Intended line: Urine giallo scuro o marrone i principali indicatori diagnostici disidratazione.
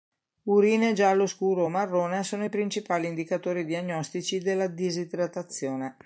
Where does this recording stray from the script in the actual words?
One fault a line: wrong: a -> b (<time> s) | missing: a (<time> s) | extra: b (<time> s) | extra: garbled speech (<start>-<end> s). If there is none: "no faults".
extra: sono (2.2 s)
extra: della (4.4 s)